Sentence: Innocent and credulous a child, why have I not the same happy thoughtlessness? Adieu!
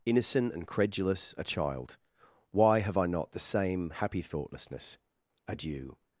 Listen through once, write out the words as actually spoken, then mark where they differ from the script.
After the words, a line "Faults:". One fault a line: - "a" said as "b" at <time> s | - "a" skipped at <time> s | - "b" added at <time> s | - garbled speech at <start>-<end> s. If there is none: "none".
Innocent and credulous a child, why have I not the same happy thoughtlessness? Adieu!
Faults:
none